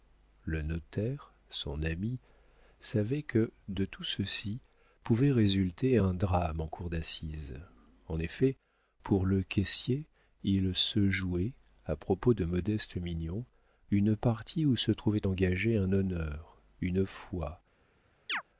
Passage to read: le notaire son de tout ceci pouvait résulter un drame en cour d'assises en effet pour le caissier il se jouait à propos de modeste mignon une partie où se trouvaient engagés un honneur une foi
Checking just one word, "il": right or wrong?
right